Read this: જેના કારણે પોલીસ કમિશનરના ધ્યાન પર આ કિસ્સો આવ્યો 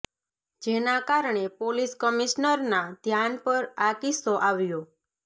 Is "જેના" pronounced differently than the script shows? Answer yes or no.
no